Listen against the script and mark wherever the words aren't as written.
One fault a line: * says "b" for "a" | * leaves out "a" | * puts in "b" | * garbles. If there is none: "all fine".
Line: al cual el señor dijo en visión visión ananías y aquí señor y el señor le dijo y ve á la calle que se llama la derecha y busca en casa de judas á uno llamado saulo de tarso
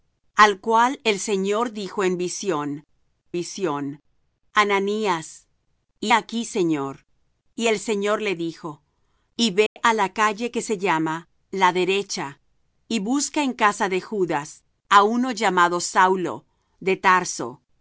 all fine